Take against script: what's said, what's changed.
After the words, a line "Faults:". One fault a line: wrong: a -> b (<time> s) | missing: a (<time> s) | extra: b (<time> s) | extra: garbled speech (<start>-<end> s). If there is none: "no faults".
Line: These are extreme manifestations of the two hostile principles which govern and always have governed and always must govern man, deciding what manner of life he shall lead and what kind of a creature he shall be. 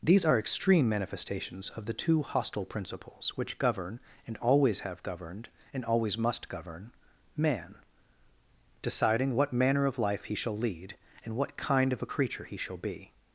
These are extreme manifestations of the two hostile principles which govern and always have governed and always must govern man, deciding what manner of life he shall lead and what kind of a creature he shall be.
Faults:
no faults